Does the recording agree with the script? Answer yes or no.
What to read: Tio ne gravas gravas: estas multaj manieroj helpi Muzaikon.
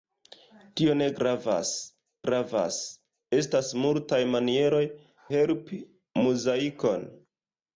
yes